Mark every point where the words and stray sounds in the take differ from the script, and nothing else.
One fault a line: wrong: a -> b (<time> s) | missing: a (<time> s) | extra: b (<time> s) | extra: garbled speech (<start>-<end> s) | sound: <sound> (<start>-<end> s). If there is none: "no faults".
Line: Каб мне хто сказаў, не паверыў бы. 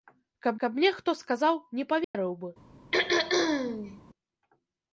extra: каб (0.6 s)
sound: dropout (2.0-2.1 s)
sound: throat clearing (2.9-4.0 s)